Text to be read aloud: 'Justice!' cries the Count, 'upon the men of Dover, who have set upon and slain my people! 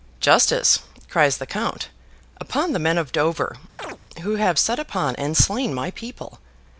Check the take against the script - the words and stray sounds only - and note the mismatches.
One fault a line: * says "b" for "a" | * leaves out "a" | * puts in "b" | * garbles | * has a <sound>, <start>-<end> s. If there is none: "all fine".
* has a chirp, 3.8-4.0 s